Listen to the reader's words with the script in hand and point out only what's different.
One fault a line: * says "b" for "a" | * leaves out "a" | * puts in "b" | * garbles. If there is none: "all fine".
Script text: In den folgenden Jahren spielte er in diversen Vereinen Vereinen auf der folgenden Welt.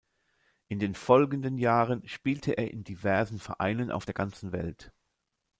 * leaves out "Vereinen"
* says "ganzen" for "folgenden"